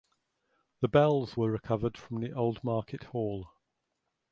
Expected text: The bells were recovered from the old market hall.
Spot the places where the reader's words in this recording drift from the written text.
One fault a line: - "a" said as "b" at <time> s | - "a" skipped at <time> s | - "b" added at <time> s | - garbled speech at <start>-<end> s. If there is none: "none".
none